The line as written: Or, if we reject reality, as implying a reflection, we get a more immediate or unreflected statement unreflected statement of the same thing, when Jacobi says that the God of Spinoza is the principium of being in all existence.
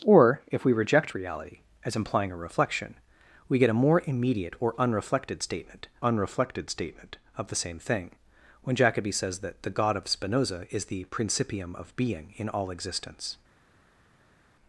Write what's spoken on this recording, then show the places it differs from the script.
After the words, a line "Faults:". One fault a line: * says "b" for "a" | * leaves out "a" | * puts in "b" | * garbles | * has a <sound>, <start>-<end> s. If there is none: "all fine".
Or, if we reject reality, as implying a reflection, we get a more immediate or unreflected statement unreflected statement of the same thing, when Jacobi says that the God of Spinoza is the principium of being in all existence.
Faults:
all fine